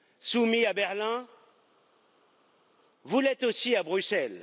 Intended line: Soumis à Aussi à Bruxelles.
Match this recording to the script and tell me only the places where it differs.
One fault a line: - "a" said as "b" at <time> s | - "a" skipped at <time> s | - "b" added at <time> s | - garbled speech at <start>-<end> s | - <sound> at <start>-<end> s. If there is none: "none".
- "Berlin vous l'êtes" added at 0.7 s